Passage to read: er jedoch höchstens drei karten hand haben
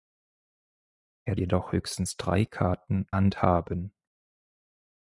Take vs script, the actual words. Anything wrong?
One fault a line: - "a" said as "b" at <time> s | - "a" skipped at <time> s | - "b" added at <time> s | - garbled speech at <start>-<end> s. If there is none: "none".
none